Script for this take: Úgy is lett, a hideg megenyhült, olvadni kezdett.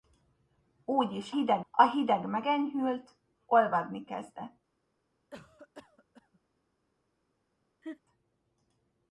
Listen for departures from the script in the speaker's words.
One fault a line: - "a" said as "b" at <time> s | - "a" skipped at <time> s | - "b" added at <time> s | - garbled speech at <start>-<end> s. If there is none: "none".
- "lett" said as "hideg" at 1.3 s